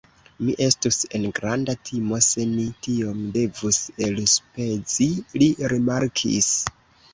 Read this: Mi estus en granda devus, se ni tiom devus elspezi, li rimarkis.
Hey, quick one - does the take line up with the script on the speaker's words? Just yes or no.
no